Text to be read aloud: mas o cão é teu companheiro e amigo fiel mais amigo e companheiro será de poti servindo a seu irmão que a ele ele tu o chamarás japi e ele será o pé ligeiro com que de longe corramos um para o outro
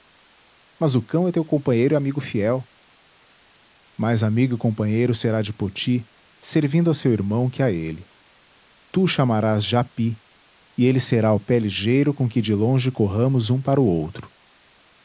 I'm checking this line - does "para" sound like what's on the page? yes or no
yes